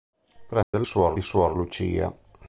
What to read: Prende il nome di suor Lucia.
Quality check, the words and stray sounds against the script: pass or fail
fail